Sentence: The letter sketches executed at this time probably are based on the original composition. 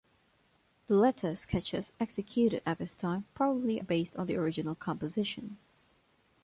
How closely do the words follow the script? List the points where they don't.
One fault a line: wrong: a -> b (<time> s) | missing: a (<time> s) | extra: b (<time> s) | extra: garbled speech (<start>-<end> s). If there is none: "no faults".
missing: are (3.8 s)